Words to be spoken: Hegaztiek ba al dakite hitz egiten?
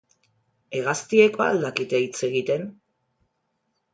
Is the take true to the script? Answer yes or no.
yes